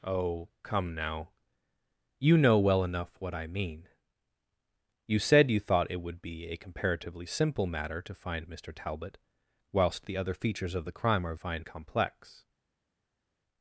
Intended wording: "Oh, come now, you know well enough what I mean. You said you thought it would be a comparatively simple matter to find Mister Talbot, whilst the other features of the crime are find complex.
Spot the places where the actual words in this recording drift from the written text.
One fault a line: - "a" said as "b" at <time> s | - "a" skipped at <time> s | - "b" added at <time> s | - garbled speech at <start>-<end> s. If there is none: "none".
none